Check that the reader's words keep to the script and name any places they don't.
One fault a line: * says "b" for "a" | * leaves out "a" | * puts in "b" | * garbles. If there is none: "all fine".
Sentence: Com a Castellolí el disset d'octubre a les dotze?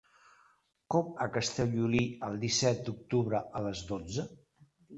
all fine